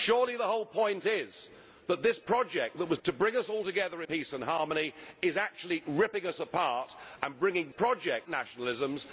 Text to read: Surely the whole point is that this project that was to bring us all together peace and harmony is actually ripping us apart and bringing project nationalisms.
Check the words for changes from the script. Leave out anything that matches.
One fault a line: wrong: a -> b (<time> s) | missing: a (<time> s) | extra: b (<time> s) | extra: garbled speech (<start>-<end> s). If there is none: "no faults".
no faults